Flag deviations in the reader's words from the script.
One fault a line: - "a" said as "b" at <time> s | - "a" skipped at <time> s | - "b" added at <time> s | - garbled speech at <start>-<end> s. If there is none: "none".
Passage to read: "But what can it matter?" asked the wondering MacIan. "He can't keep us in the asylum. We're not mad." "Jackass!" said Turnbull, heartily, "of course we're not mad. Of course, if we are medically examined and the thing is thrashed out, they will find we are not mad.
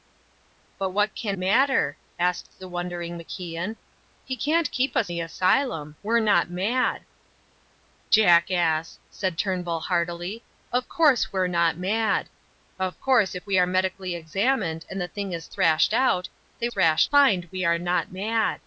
- "it" skipped at 1.4 s
- "in" skipped at 5.1 s
- "will" said as "thrashed" at 16.7 s